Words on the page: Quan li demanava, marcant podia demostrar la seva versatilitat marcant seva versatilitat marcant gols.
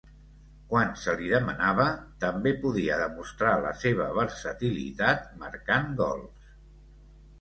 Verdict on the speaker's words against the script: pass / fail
fail